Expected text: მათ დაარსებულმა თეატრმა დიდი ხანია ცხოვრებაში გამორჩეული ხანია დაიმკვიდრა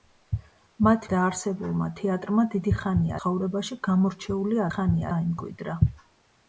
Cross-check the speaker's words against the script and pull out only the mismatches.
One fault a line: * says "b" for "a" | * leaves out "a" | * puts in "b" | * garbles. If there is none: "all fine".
all fine